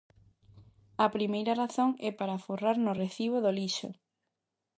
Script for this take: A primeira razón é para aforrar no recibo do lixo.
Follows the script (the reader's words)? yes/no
yes